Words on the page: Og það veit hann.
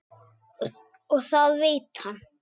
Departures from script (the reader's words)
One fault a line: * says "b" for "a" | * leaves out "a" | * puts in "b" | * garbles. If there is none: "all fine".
all fine